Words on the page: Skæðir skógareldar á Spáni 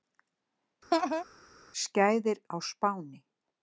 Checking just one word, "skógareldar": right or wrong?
wrong